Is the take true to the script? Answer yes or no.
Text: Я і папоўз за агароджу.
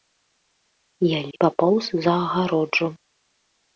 yes